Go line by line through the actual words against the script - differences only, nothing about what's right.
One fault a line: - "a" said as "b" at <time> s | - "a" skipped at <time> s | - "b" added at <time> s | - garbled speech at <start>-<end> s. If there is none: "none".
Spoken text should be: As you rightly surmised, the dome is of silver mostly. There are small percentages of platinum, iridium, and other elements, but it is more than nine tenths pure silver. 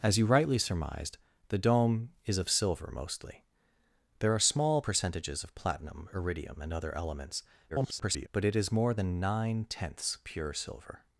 - garbled speech at 7.7-8.3 s